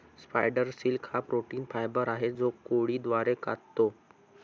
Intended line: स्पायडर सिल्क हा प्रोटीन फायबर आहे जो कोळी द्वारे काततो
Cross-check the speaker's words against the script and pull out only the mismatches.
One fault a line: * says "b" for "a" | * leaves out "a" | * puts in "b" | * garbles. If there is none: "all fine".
all fine